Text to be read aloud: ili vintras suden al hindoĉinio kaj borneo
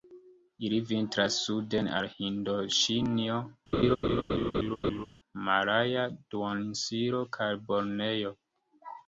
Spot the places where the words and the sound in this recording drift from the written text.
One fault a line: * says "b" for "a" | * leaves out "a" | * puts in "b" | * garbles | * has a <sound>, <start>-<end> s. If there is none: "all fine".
* has a laugh, 3.7-5.1 s
* puts in "malaja duoninsulo"